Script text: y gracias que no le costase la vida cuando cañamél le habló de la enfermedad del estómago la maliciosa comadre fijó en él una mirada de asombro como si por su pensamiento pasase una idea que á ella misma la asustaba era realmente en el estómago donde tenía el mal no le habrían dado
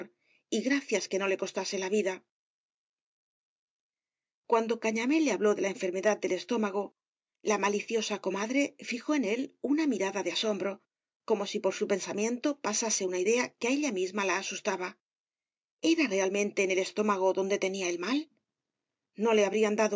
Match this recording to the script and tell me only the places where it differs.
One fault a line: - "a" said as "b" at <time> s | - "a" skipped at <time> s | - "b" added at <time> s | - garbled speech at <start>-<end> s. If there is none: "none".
none